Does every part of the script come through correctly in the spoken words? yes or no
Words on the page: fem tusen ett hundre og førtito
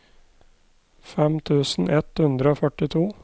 yes